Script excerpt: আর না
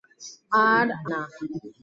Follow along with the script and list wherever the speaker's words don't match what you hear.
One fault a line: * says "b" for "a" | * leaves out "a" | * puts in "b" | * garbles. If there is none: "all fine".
all fine